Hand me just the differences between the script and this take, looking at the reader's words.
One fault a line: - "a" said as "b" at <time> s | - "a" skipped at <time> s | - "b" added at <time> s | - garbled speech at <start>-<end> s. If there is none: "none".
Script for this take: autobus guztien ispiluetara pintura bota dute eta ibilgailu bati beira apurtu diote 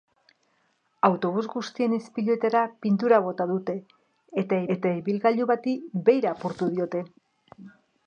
- "eta" added at 4.8 s